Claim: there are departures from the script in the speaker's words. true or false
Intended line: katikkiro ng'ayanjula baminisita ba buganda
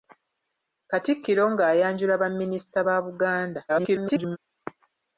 true